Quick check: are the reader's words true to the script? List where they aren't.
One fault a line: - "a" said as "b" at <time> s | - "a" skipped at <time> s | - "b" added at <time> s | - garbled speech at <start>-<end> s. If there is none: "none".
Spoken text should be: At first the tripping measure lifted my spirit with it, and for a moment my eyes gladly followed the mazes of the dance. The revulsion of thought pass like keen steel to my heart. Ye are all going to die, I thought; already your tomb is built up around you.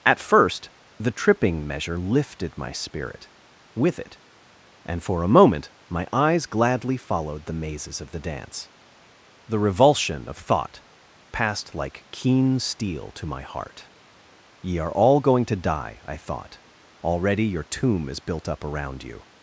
- "pass" said as "passed" at 11.3 s